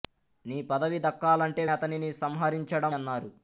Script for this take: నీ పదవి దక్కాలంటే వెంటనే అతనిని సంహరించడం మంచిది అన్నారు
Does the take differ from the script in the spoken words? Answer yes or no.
yes